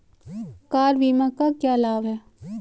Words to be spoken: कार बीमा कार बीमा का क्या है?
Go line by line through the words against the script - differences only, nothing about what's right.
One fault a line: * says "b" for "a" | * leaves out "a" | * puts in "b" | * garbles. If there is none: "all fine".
* leaves out "कार बीमा"
* puts in "लाभ"